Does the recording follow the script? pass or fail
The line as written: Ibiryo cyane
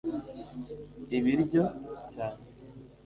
pass